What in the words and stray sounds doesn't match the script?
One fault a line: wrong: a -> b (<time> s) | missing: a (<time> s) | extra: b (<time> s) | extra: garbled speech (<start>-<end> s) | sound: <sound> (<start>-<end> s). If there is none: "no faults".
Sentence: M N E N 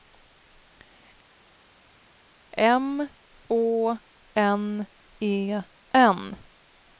extra: Å (3.5 s)